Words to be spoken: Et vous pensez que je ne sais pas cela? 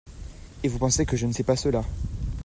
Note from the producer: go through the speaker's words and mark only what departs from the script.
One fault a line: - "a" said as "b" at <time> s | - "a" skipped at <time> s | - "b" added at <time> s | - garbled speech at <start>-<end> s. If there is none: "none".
none